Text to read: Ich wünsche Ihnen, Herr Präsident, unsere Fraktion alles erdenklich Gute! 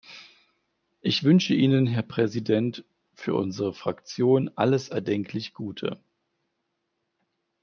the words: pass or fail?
fail